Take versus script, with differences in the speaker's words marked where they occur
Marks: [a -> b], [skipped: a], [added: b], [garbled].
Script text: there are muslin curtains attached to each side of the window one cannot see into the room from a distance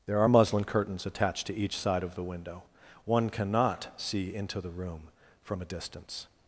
there are muslin curtains attached to each side of the window one cannot see into the room from a distance